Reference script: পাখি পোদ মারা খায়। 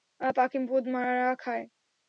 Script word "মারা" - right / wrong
right